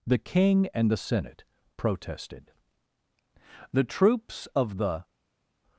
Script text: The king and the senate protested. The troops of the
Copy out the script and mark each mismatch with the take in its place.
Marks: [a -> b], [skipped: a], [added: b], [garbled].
The king and the senate protested. The troops of the